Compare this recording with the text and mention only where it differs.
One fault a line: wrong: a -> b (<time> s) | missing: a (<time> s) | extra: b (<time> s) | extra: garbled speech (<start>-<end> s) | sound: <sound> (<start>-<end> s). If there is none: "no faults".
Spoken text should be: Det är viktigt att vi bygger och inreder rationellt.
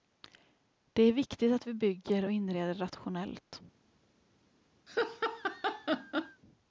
sound: laugh (4.9-6.4 s)